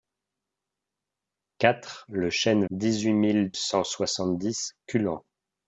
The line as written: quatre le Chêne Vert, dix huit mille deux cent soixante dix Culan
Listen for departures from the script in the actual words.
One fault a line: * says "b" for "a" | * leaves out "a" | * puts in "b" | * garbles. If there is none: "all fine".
* leaves out "Vert"
* leaves out "deux"